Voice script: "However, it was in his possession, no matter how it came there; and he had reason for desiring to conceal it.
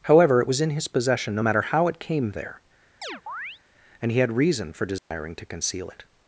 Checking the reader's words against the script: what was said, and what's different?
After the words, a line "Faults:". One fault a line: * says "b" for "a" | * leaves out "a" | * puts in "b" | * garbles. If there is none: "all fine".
"However, it was in his possession, no matter how it came there; and he had reason for desiring to conceal it.
Faults:
all fine